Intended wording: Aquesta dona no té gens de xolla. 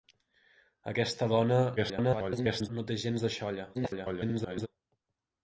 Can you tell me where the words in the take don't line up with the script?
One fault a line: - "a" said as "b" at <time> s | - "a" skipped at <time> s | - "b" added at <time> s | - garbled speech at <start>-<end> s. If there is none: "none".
- garbled speech at 1.8-2.7 s
- garbled speech at 3.7-4.7 s